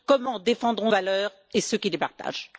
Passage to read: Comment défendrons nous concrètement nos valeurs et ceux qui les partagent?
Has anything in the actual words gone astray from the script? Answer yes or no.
yes